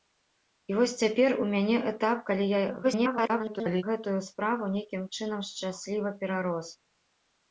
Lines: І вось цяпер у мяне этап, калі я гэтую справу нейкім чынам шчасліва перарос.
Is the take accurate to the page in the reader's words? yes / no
no